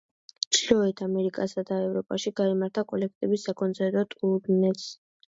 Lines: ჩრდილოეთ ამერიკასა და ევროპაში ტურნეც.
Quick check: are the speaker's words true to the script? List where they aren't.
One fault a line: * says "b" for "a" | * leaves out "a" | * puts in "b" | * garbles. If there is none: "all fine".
* puts in "გაიმართა კოლექტივის საკონცერტო"